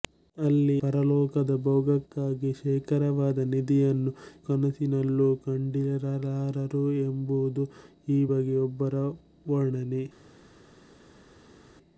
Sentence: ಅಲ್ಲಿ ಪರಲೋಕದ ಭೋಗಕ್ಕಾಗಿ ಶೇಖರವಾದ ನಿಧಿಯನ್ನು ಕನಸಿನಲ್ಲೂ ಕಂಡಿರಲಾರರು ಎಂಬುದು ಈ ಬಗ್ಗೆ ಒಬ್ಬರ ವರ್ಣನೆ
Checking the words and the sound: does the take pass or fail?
pass